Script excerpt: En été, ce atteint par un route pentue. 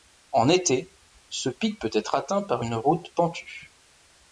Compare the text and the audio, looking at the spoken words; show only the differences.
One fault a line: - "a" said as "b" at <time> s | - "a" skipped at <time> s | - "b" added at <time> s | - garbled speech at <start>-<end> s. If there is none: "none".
- "pic peut être" added at 1.5 s
- "un" said as "une" at 2.6 s